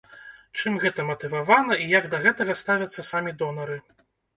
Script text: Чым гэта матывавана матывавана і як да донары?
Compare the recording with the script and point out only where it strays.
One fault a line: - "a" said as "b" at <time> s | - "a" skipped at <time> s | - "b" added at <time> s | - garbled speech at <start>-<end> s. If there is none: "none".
- "матывавана" skipped at 1.8 s
- "гэтага ставяцца самі" added at 2.3 s